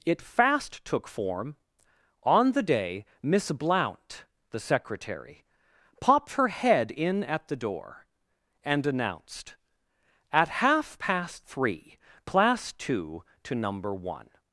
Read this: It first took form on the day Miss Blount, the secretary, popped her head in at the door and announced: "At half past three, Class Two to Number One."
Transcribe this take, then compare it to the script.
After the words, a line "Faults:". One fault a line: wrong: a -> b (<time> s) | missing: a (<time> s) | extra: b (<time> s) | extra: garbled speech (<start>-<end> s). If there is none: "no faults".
It fast took form on the day Miss Blount, the secretary, popped her head in at the door and announced: "At half past three, Class Two to Number One."
Faults:
wrong: first -> fast (0.2 s)